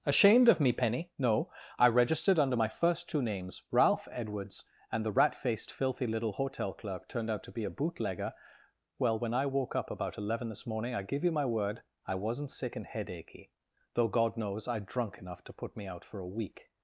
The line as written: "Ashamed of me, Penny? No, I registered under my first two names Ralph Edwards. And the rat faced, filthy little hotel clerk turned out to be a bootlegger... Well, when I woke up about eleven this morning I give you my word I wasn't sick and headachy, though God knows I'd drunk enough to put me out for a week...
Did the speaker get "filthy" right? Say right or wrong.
right